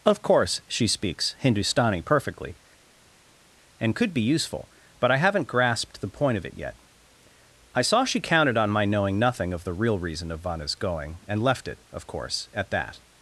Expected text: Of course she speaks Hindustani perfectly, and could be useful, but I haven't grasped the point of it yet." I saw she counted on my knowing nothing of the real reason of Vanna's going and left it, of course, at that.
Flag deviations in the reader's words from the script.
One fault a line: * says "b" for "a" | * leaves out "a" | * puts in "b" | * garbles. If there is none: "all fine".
all fine